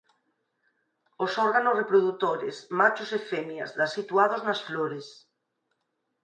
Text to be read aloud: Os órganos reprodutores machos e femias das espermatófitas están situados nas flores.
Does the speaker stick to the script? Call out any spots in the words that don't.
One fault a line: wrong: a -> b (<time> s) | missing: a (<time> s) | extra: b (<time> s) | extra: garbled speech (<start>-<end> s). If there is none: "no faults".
missing: espermatófitas están (3.9 s)